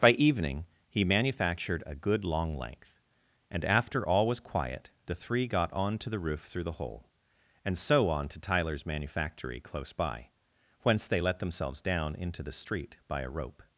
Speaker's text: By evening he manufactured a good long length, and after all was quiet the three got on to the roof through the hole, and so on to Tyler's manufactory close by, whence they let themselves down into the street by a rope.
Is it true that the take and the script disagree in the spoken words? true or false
false